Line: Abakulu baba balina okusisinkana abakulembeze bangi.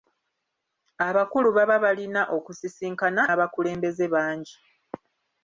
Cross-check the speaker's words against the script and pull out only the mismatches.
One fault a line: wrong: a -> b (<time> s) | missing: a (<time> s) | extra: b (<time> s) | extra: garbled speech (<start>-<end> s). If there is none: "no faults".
no faults